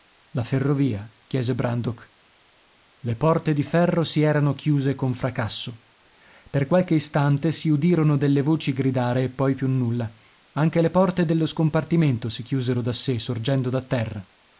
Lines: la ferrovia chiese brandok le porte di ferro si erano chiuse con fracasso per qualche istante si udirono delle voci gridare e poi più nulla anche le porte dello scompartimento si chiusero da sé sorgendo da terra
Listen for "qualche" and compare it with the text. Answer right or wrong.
right